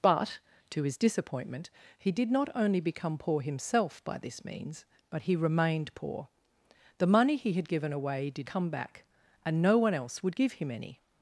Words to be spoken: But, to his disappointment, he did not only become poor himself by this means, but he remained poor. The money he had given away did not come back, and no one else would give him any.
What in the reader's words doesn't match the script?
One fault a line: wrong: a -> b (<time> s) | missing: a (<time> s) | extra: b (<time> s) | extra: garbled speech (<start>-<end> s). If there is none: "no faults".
missing: not (8.5 s)